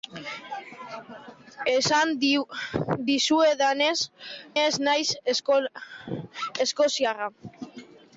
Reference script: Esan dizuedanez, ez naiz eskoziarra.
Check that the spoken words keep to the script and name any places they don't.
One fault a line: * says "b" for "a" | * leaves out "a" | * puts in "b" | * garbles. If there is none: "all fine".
all fine